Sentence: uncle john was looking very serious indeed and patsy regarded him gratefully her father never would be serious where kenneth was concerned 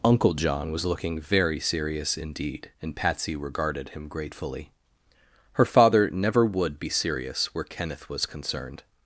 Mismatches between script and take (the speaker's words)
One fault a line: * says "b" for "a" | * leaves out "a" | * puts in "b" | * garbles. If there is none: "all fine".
all fine